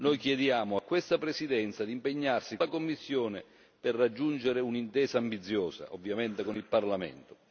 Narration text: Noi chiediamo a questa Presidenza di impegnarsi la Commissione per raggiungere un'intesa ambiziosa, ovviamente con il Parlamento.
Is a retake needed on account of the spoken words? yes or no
no